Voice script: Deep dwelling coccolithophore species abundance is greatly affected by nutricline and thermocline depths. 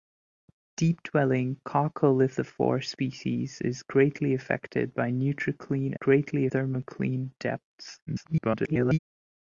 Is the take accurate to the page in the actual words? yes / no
no